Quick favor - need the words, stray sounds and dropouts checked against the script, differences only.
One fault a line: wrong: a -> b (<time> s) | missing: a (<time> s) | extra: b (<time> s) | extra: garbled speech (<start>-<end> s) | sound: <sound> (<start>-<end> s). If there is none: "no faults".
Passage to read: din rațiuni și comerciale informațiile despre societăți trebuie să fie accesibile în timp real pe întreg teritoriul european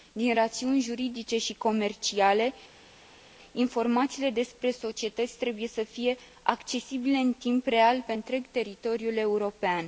extra: juridice (0.8 s)